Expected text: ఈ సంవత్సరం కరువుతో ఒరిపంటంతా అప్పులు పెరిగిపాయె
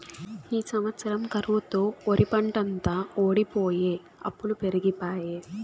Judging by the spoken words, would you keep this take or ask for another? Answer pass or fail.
fail